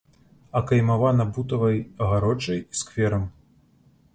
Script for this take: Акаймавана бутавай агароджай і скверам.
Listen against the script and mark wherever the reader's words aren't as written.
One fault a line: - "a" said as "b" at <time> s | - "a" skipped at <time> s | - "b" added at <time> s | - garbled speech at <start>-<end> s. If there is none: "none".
none